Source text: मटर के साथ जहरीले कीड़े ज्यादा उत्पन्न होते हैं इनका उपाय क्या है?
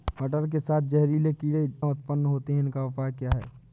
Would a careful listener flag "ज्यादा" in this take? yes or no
yes